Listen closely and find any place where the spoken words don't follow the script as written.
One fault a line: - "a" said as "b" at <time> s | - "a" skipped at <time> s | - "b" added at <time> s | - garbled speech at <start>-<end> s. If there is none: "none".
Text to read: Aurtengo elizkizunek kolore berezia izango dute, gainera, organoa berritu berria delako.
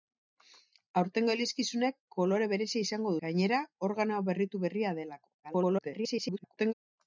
- "dute" skipped at 3.1 s
- garbled speech at 5.4-6.7 s